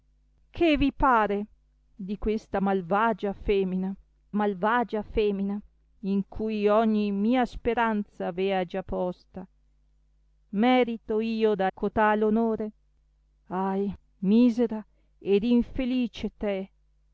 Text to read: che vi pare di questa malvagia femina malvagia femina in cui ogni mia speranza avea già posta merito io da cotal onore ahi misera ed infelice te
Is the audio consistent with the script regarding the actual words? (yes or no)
yes